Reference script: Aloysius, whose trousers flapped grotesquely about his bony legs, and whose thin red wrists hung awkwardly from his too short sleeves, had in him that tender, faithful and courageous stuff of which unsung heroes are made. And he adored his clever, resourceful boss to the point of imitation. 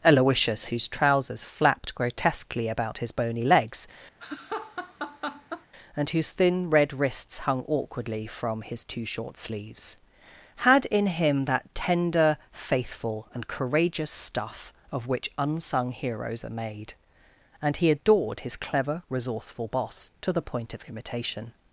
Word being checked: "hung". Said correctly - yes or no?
yes